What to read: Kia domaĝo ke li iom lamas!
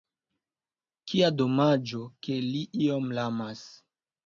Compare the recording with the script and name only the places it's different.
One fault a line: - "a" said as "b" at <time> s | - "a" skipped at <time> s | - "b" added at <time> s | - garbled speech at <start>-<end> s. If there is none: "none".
none